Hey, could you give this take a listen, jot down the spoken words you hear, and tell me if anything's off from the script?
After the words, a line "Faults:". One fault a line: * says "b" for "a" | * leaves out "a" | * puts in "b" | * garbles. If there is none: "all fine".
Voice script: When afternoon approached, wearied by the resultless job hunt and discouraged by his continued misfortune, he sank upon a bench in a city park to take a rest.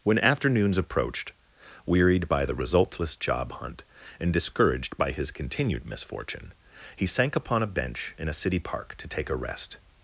When afternoons approached, wearied by the resultless job hunt and discouraged by his continued misfortune, he sank upon a bench in a city park to take a rest.
Faults:
* says "afternoons" for "afternoon"